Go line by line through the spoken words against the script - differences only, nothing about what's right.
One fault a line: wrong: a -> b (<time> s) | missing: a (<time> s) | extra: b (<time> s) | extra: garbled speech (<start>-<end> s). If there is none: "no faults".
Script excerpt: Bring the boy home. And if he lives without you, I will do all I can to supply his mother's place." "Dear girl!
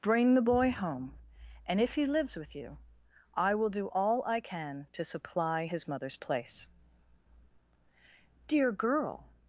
wrong: without -> with (2.4 s)